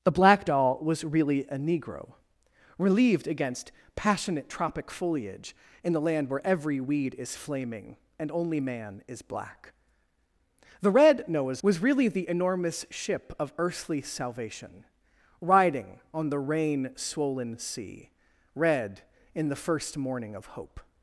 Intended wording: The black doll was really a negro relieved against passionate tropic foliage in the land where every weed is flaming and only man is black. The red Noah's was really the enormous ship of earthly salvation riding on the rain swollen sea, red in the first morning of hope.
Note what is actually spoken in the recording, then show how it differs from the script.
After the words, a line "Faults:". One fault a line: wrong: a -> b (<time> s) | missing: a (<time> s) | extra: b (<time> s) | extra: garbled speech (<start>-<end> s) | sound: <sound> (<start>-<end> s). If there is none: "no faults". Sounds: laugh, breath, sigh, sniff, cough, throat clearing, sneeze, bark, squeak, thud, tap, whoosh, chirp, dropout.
The black doll was really a negro relieved against passionate tropic foliage in the land where every weed is flaming and only man is black. The red Noah's was really the enormous ship of earthly salvation riding on the rain swollen sea, red in the first morning of hope.
Faults:
no faults